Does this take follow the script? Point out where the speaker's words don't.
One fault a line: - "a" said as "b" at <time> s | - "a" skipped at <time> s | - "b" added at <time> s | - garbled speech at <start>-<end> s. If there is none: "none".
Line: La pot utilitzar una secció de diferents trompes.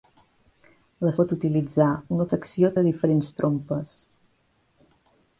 none